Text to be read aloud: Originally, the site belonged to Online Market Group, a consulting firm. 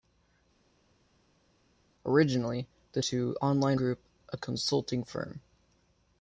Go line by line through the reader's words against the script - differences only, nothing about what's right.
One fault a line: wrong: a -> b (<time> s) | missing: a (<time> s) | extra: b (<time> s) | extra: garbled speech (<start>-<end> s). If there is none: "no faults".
missing: site belonged (3.0 s)
missing: Market (3.8 s)